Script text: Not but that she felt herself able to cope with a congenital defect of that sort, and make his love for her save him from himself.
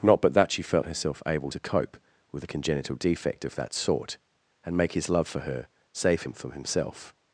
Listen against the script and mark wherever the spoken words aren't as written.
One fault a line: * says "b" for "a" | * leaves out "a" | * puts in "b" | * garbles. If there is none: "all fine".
all fine